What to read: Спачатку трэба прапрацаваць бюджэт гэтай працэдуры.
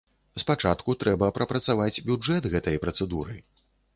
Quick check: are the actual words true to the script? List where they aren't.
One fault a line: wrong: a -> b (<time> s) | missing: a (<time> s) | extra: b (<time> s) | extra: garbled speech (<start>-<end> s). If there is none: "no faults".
no faults